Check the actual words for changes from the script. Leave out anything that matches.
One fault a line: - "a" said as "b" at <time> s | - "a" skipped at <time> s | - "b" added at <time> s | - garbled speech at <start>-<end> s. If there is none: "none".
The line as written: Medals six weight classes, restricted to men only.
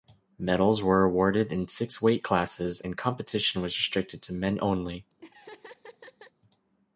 - "were awarded in" added at 0.8 s
- "and competition was" added at 2.8 s